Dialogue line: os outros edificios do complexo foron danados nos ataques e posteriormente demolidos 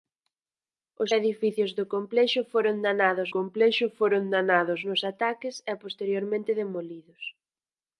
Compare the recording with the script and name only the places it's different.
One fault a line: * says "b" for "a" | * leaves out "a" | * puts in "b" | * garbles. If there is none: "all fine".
* leaves out "outros"
* puts in "complexo foron danados"